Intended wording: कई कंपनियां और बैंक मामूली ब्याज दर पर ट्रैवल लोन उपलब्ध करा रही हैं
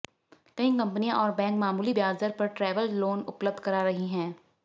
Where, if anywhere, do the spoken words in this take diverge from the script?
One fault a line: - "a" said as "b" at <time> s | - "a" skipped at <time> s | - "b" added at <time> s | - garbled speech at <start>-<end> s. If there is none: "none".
none